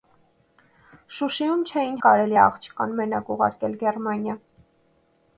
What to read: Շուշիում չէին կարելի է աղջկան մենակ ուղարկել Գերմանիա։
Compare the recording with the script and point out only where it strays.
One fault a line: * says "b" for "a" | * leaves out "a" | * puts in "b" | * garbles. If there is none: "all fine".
all fine